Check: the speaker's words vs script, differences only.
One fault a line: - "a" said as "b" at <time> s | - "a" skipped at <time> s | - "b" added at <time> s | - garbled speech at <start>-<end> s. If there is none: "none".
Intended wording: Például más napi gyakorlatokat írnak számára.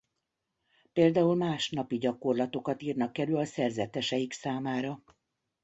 - "elő a szerzeteseik" added at 3.2 s